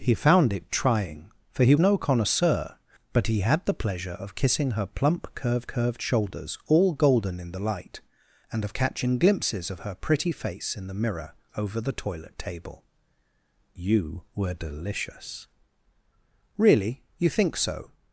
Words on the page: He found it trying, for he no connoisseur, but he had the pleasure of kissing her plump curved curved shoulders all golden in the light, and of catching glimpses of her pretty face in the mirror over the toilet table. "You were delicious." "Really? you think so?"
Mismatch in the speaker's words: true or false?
false